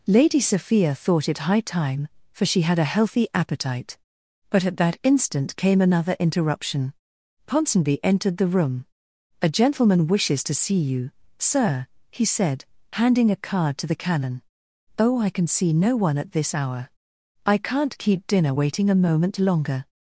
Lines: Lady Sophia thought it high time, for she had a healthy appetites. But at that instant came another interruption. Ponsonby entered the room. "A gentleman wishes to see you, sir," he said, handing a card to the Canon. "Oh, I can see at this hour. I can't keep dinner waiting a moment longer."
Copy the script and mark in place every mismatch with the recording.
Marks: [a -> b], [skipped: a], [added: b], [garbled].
Lady Sophia thought it high time, for she had a healthy [appetites. -> appetite] But at that instant came another interruption. Ponsonby entered the room. "A gentleman wishes to see you, sir," he said, handing a card to the Canon. "Oh, I can see [added: no one] at this hour. I can't keep dinner waiting a moment longer."